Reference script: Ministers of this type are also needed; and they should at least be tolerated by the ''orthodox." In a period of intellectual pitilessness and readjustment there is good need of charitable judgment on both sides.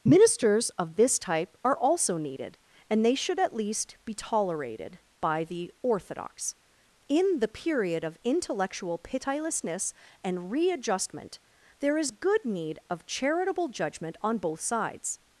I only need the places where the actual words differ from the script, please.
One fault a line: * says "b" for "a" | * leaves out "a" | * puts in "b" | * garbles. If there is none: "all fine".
* says "the" for "a"